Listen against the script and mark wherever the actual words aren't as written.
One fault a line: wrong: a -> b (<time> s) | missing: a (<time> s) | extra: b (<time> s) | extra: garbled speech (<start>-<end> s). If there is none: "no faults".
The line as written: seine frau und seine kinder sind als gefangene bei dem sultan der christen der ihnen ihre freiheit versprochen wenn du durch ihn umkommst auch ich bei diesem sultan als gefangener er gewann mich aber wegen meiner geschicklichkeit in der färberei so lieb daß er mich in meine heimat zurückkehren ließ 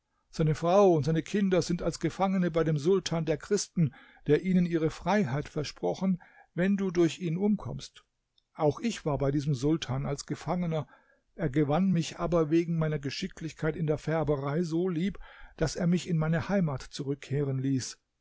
extra: war (9.1 s)